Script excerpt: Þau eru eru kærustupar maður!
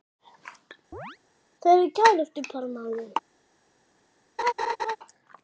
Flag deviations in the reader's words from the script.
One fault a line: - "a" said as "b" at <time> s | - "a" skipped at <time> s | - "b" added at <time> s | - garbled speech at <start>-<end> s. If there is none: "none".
- "eru" skipped at 1.9 s